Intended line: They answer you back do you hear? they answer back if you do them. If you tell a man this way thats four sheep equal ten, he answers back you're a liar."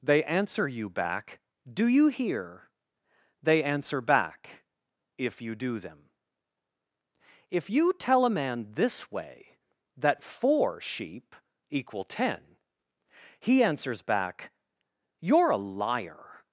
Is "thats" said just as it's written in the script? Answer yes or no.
no